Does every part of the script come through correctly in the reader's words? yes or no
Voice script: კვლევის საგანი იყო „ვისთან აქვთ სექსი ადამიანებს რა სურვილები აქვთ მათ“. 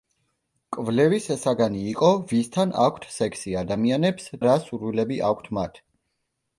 yes